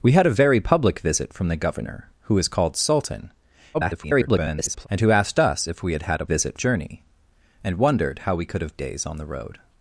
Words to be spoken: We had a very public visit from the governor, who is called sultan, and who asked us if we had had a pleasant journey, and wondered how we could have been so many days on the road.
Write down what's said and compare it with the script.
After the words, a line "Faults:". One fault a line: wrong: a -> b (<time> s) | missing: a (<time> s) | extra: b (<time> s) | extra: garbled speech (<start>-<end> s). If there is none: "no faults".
We had a very public visit from the governor, who is called sultan, [garbled] and who asked us if we had had a visit journey, and wondered how we could have days on the road.
Faults:
extra: garbled speech (3.7-4.9 s)
wrong: pleasant -> visit (6.2 s)
missing: been so many (8.8 s)